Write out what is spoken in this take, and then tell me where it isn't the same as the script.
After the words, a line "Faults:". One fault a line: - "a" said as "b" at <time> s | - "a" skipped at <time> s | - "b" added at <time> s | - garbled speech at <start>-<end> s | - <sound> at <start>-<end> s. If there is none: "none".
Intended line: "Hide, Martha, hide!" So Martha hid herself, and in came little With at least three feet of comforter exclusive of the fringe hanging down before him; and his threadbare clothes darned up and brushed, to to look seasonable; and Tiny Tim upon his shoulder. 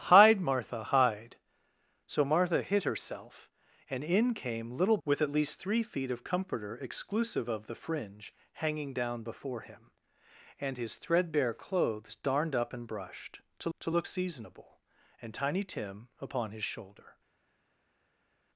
"Hide, Martha, hide!" So Martha hid herself, and in came little With at least three feet of comforter exclusive of the fringe hanging down before him; and his threadbare clothes darned up and brushed, to to look seasonable; and Tiny Tim upon his shoulder.
Faults:
none